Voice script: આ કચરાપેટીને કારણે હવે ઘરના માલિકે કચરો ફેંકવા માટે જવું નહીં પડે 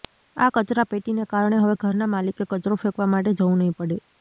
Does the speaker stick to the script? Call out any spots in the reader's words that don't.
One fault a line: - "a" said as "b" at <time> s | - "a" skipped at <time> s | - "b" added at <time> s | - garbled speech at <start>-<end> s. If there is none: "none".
none